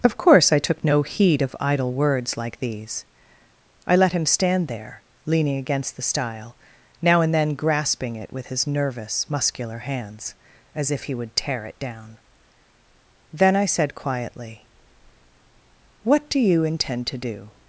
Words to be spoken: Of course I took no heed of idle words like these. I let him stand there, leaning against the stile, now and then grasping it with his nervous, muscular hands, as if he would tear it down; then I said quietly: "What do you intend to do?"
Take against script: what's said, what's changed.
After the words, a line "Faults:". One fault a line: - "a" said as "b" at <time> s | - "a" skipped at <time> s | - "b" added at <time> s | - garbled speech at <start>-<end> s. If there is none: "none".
Of course I took no heed of idle words like these. I let him stand there, leaning against the stile, now and then grasping it with his nervous, muscular hands, as if he would tear it down; then I said quietly: "What do you intend to do?"
Faults:
none